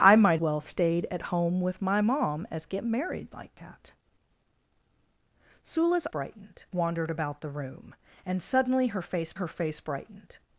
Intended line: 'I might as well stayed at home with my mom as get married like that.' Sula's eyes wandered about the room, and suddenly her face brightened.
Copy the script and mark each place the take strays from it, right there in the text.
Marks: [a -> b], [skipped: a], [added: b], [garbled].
'I might [skipped: as] well stayed at home with my mom as get married like that.' Sula's [eyes -> brightened] wandered about the room, and suddenly her face [added: her face] brightened.